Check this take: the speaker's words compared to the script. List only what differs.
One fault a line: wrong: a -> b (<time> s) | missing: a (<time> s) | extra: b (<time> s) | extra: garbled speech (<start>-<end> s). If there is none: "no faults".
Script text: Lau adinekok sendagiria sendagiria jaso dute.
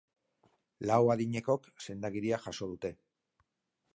missing: sendagiria (2.4 s)